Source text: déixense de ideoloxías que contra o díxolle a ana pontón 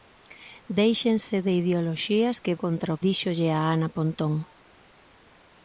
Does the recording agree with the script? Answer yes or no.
yes